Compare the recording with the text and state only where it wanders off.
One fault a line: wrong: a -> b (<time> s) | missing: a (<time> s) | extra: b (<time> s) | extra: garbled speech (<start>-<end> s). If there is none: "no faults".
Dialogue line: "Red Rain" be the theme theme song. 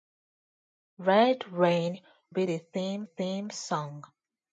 no faults